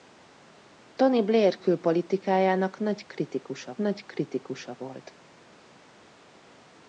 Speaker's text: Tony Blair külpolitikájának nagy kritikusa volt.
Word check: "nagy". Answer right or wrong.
right